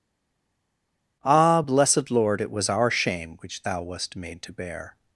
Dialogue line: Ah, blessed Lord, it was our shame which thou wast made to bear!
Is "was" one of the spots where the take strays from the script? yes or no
no